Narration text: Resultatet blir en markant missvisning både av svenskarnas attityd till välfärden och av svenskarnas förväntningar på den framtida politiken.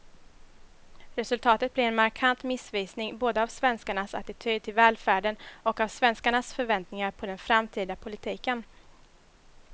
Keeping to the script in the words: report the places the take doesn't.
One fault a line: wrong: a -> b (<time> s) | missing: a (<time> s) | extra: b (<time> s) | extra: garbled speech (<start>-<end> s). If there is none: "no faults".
no faults